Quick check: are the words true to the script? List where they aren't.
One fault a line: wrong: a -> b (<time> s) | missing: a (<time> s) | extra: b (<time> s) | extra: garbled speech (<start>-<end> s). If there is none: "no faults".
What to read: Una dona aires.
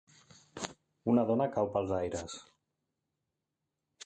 extra: cau pels (1.6 s)